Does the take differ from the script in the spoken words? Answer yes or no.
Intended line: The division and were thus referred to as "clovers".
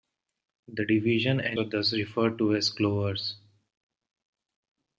no